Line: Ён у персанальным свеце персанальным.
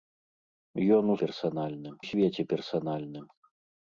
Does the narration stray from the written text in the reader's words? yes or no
no